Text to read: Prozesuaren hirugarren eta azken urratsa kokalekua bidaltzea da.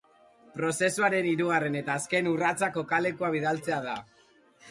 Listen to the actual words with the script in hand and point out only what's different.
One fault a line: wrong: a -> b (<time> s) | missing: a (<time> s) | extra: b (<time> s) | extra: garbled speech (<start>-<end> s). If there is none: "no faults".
no faults